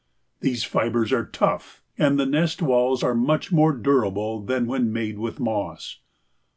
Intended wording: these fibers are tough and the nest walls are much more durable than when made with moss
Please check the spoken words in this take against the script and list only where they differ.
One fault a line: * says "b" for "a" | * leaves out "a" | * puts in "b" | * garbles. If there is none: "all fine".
all fine